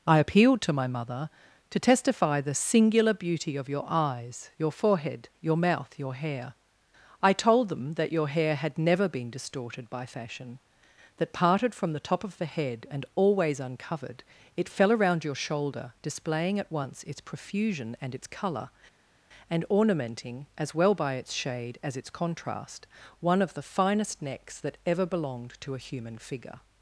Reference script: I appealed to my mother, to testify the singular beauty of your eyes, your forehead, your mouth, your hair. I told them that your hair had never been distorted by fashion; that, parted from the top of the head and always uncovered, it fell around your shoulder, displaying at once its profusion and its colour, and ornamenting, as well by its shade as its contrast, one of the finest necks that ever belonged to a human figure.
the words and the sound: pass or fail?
pass